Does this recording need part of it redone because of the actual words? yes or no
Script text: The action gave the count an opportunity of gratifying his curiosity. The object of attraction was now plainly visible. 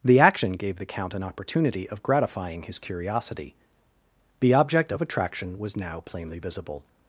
no